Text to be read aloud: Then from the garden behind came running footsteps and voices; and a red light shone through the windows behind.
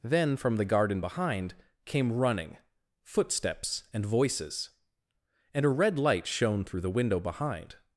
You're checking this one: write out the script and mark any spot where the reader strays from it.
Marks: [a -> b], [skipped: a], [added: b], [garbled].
Then from the garden behind came running footsteps and voices; and a red light shone through the [windows -> window] behind.